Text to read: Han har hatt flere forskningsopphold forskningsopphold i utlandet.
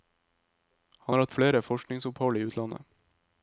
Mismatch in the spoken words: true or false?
true